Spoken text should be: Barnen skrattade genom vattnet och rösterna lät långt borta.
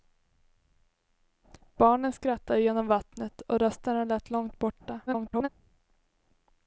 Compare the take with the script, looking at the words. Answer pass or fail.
fail